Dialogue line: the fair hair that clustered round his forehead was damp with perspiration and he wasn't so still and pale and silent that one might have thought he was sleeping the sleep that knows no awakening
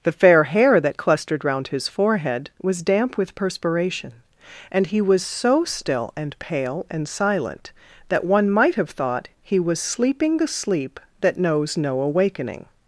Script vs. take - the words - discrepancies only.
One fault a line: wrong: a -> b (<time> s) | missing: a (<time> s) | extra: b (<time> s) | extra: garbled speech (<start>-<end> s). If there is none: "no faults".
wrong: wasn't -> was (5.0 s)